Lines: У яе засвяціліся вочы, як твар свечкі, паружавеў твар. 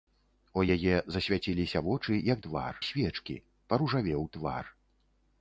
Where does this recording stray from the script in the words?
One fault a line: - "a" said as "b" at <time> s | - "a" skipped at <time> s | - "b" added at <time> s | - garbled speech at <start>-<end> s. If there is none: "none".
none